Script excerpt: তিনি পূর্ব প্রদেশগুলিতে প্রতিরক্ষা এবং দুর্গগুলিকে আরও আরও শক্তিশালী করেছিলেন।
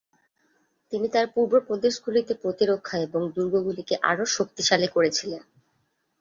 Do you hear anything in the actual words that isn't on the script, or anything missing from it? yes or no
yes